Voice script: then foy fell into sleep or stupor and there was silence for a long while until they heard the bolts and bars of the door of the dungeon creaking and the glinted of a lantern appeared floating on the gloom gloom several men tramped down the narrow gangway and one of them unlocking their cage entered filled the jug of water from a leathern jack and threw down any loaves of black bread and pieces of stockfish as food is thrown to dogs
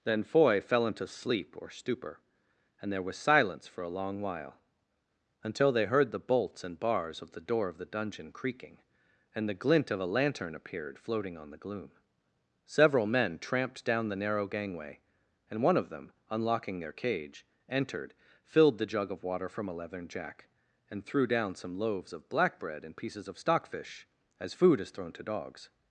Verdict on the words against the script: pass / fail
fail